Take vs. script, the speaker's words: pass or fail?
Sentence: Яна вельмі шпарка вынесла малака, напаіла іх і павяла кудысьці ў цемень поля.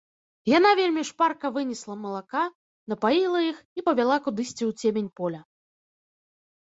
pass